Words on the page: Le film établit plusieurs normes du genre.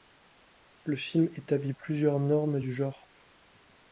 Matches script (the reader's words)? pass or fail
pass